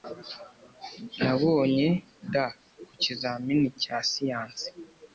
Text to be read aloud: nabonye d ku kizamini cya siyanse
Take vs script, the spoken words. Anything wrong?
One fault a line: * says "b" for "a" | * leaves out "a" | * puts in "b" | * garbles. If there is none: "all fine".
all fine